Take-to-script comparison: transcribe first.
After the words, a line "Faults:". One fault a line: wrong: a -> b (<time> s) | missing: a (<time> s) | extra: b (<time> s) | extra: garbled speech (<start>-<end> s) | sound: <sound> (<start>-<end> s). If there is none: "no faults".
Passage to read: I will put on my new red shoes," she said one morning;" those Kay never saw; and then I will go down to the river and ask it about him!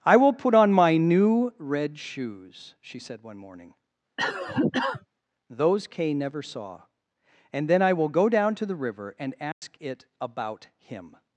I will put on my new red shoes," she said one morning;" those Kay never saw; and then I will go down to the river and ask it about him!
Faults:
sound: cough (4.2-5.1 s)
sound: dropout (9.5-9.6 s)